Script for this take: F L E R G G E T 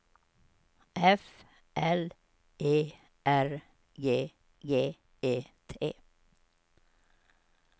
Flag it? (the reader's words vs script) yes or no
no